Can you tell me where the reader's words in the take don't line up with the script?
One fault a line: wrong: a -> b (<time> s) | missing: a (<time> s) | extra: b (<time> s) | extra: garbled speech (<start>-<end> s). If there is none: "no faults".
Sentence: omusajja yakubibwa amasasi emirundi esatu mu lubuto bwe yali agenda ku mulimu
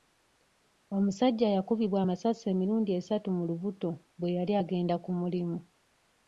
no faults